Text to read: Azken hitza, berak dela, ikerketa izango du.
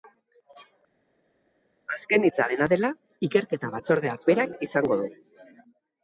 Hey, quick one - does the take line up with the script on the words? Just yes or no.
no